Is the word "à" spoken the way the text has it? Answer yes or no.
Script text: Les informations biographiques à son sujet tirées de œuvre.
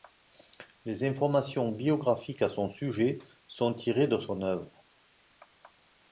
yes